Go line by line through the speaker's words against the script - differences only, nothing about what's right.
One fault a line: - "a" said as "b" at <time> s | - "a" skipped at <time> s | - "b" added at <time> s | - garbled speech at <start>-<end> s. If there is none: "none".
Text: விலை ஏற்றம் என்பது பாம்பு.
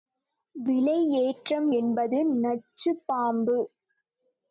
- "நச்சுப்" added at 2.4 s